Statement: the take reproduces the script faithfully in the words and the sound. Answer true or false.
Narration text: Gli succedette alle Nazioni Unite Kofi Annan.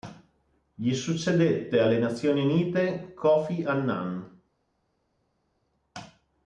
true